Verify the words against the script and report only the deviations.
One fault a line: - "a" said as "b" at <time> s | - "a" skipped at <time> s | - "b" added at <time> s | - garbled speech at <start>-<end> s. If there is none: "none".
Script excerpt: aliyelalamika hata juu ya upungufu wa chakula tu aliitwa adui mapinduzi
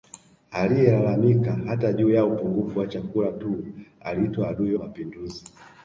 none